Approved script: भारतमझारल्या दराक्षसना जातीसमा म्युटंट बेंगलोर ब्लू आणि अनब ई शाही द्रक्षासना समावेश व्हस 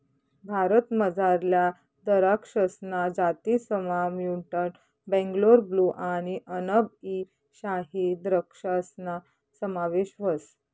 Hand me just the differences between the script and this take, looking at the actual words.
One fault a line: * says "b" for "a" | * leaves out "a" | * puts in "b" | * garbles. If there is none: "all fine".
all fine